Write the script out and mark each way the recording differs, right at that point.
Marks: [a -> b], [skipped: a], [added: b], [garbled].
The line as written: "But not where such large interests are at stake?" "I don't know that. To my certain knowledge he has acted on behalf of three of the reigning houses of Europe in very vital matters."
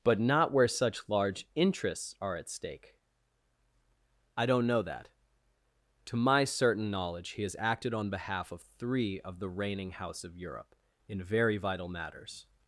"But not where such large interests are at stake?" "I don't know that. To my certain knowledge he has acted on behalf of three of the reigning [houses -> house] of Europe in very vital matters."